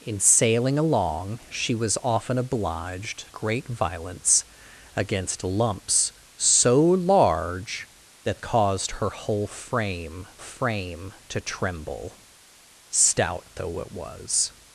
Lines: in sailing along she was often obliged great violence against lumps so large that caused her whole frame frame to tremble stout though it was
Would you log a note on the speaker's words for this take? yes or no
no